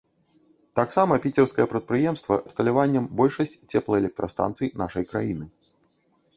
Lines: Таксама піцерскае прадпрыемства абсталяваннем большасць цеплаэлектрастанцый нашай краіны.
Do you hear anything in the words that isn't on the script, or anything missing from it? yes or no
no